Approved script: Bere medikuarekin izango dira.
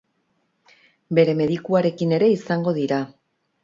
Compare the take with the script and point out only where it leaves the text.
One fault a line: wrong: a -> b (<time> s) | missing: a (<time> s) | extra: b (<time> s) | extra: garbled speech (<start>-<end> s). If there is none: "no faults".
extra: ere (2.2 s)